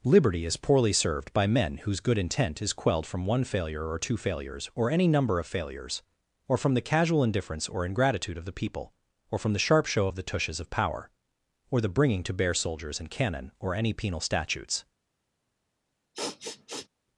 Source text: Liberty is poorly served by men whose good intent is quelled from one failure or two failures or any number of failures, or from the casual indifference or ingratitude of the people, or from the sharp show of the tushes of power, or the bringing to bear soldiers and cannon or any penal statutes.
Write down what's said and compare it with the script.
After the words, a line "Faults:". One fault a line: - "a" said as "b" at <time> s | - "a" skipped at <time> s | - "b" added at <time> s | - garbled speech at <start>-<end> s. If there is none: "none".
Liberty is poorly served by men whose good intent is quelled from one failure or two failures or any number of failures, or from the casual indifference or ingratitude of the people, or from the sharp show of the tushes of power, or the bringing to bear soldiers and cannon or any penal statutes.
Faults:
none